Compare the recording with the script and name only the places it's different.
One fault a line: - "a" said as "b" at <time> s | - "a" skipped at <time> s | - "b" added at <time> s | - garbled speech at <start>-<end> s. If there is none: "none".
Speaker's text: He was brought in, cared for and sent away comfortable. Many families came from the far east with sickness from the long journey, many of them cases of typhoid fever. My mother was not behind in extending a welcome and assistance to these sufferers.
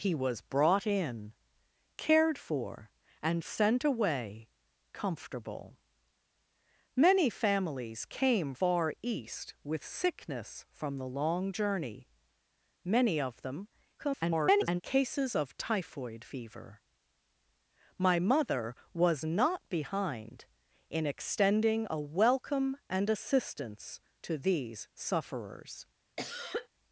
- "from the" skipped at 8.6 s
- garbled speech at 14.0-14.8 s